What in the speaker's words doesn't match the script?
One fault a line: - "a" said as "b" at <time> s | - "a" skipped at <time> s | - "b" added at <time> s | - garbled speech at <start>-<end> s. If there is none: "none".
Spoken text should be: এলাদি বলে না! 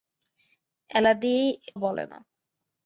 none